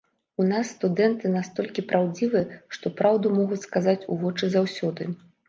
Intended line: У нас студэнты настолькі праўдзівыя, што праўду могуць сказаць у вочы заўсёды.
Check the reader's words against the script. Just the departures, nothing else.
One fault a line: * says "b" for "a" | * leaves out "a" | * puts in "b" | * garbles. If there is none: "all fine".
all fine